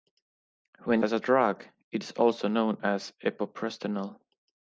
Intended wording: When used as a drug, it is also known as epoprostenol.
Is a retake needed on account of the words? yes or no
yes